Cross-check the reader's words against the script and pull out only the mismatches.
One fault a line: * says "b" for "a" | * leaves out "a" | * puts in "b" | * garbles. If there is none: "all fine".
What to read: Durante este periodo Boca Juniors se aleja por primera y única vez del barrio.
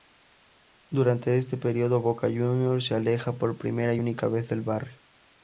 all fine